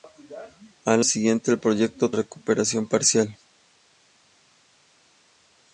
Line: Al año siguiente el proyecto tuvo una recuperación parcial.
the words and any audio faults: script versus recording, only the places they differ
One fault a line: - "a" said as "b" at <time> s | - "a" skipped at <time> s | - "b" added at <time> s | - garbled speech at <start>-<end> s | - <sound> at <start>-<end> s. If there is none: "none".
- "año" skipped at 1.1 s
- "tuvo una" skipped at 2.1 s